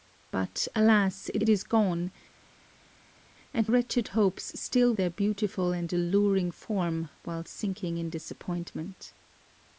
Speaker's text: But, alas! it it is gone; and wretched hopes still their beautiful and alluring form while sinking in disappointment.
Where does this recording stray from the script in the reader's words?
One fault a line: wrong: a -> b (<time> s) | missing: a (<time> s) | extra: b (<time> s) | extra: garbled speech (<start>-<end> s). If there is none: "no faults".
no faults